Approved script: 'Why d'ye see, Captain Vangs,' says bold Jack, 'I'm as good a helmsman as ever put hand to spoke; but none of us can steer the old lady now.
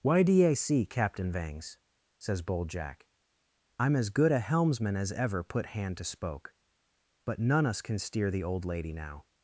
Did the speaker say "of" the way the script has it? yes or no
no